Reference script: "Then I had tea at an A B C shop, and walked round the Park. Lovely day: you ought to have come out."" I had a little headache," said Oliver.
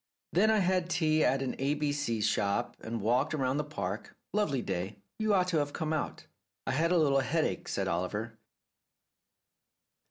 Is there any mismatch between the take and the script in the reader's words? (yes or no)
no